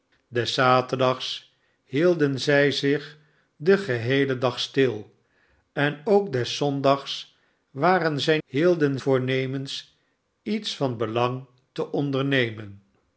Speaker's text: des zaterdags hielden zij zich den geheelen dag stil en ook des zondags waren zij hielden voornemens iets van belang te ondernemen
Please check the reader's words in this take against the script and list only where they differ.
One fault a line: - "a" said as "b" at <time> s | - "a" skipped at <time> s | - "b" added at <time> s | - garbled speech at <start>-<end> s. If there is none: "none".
none